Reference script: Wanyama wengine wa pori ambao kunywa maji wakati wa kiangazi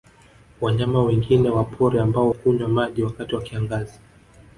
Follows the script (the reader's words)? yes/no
yes